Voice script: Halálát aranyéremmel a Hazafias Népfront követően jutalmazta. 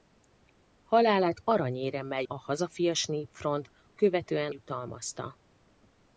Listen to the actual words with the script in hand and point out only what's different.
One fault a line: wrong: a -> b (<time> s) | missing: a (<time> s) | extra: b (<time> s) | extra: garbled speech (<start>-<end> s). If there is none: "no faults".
no faults